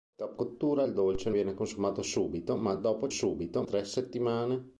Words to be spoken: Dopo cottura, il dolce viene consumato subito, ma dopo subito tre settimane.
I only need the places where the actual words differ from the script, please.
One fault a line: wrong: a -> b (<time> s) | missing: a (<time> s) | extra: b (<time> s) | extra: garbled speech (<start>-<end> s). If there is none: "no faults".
no faults